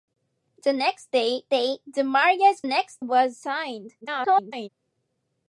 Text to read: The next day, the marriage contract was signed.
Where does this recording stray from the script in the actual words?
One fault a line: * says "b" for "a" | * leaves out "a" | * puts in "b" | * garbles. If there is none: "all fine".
* puts in "day"
* says "next" for "contract"
* garbles